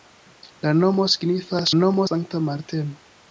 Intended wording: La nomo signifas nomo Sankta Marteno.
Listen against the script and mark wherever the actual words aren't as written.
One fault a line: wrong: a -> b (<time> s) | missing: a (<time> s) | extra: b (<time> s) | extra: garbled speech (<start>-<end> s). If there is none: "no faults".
no faults